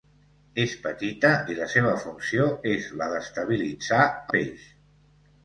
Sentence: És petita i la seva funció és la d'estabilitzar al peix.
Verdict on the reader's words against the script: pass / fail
fail